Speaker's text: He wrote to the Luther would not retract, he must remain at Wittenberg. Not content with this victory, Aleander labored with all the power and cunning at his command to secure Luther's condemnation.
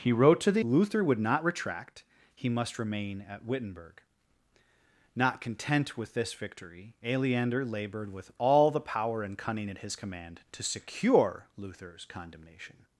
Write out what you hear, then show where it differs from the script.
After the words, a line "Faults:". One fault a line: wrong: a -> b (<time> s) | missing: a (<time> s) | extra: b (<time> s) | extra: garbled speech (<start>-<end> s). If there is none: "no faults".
He wrote to the Luther would not retract, he must remain at Wittenberg. Not content with this victory, Aleander labored with all the power and cunning at his command to secure Luther's condemnation.
Faults:
no faults